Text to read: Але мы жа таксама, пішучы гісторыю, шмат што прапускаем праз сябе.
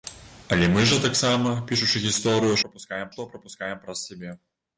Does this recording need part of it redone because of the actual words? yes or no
yes